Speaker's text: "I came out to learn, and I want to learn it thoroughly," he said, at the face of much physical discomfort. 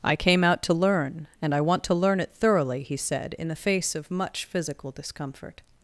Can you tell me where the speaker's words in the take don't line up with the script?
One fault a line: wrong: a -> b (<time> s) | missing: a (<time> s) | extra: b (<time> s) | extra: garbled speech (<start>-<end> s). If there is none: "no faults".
wrong: at -> in (3.4 s)